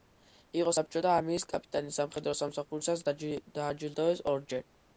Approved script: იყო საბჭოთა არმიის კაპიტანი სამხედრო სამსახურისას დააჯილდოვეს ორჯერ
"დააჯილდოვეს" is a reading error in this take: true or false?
false